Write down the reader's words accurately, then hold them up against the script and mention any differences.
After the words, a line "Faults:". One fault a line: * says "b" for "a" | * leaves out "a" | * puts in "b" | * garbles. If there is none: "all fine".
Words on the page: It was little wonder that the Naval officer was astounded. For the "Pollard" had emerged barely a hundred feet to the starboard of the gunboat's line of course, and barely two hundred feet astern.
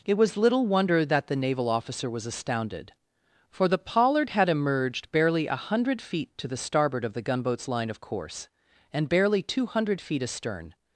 It was little wonder that the Naval officer was astounded. For the "Pollard" had emerged barely a hundred feet to the starboard of the gunboat's line of course, and barely two hundred feet astern.
Faults:
all fine